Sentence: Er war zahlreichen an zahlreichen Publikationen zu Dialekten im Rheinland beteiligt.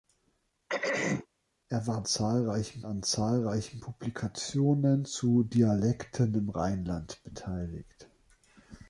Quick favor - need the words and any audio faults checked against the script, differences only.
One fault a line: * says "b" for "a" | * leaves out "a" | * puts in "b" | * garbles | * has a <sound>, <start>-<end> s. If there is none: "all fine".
* has a throat clearing, 0.7-1.3 s